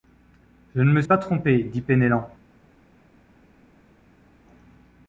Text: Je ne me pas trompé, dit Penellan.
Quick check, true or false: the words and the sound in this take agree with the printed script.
true